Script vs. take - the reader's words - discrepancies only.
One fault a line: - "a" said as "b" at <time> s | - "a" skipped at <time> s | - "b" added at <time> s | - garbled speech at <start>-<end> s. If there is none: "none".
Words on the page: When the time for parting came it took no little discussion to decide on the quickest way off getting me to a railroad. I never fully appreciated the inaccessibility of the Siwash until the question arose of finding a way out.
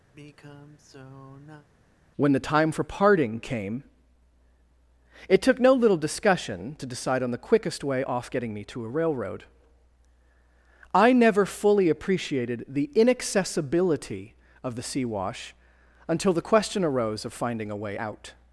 none